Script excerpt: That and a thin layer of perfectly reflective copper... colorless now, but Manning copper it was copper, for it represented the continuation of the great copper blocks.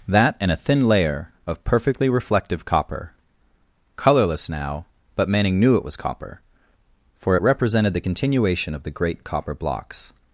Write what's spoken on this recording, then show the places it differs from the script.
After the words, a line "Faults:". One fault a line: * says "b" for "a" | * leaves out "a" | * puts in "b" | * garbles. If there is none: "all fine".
That and a thin layer of perfectly reflective copper... colorless now, but Manning knew it was copper, for it represented the continuation of the great copper blocks.
Faults:
* says "knew" for "copper"